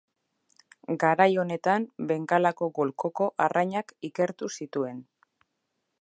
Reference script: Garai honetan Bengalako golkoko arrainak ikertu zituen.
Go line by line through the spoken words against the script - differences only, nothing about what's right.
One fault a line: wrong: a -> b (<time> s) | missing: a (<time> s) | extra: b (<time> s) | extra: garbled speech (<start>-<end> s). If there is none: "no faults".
no faults